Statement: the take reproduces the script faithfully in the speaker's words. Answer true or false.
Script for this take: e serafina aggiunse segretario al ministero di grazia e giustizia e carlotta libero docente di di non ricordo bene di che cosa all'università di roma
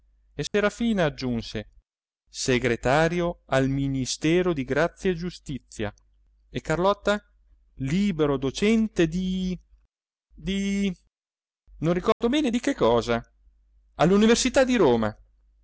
true